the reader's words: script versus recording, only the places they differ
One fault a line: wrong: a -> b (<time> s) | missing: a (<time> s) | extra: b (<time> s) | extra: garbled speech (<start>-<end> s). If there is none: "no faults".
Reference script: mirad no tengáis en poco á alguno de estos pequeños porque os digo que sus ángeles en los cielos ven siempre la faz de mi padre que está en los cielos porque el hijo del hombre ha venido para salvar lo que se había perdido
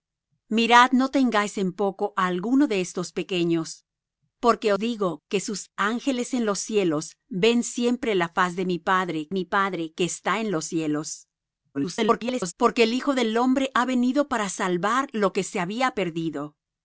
missing: os (4.7 s)
extra: mi padre (9.3 s)
extra: garbled speech (11.7-12.5 s)